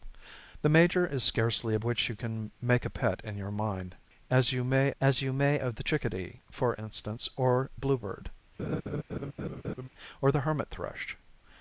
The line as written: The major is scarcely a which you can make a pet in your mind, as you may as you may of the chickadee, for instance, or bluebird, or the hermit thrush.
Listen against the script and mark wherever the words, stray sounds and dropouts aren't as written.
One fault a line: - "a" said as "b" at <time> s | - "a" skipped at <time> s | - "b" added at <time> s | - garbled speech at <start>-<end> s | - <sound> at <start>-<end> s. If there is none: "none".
- laugh at 8.6-9.9 s